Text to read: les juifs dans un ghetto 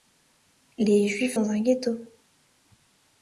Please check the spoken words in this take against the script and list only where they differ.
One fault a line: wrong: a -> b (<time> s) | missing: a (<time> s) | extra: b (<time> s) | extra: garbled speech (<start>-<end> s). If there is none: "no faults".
no faults